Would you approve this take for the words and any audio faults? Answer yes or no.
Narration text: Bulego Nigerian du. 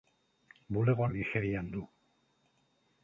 yes